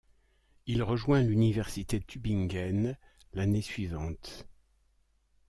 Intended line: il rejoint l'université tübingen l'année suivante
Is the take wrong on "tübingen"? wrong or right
right